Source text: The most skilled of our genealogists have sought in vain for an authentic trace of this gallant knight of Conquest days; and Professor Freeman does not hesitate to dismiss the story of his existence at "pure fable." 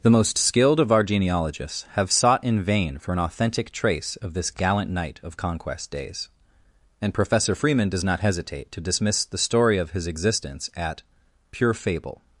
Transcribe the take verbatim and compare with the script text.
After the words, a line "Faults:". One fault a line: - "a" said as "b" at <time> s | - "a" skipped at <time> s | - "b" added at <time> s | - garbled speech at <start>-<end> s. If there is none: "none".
The most skilled of our genealogists have sought in vain for an authentic trace of this gallant knight of Conquest days; and Professor Freeman does not hesitate to dismiss the story of his existence at "pure fable."
Faults:
none